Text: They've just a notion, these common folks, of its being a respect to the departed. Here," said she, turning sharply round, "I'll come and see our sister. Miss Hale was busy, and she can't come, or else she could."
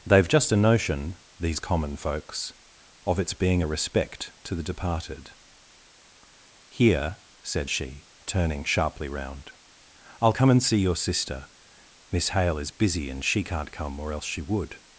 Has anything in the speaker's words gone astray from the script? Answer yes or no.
yes